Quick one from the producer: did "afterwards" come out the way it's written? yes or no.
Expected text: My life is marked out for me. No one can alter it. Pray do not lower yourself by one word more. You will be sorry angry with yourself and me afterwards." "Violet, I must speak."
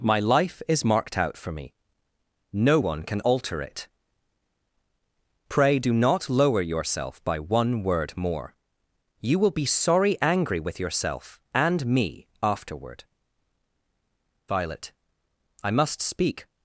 no